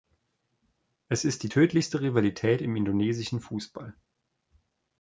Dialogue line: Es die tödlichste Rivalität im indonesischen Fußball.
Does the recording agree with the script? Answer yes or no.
no